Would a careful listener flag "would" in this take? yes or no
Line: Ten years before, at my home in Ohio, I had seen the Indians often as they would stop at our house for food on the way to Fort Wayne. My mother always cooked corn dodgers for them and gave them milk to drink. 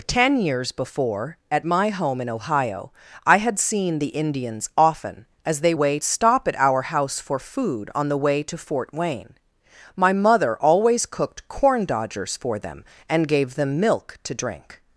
yes